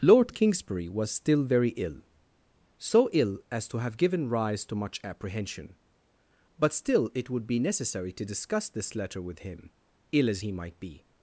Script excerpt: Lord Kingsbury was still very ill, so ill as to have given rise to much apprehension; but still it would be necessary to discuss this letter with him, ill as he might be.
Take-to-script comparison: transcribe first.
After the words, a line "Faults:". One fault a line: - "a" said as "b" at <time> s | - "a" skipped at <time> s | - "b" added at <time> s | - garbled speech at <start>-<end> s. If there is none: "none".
Lord Kingsbury was still very ill, so ill as to have given rise to much apprehension; but still it would be necessary to discuss this letter with him, ill as he might be.
Faults:
none